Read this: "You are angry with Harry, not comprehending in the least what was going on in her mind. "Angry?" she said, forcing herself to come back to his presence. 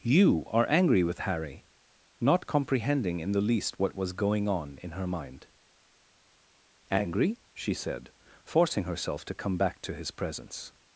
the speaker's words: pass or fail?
pass